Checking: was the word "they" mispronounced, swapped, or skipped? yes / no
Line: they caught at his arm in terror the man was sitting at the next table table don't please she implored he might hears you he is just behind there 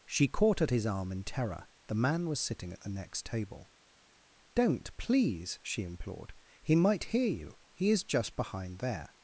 yes